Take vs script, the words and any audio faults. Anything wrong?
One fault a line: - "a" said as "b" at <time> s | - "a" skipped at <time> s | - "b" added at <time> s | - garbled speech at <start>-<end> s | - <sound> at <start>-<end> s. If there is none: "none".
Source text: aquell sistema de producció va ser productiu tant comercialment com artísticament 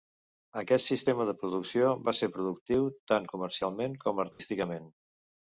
- "aquell" said as "aquest" at 0.6 s
- dropout at 4.3-4.4 s